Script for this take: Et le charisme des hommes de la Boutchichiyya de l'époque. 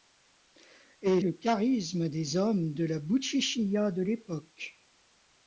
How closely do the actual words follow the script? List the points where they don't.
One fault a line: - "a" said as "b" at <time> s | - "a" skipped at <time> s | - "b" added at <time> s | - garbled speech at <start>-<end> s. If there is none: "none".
none